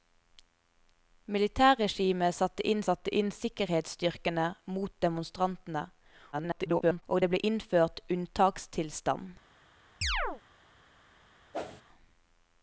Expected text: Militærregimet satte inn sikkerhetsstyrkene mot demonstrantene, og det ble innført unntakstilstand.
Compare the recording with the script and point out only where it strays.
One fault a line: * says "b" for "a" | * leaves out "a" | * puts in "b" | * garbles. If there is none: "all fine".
* puts in "satte inn"
* garbles